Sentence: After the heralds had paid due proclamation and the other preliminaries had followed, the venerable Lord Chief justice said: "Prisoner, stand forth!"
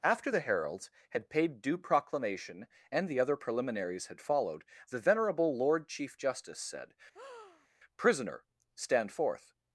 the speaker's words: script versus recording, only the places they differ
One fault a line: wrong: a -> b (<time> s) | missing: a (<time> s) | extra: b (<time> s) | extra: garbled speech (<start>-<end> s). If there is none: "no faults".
no faults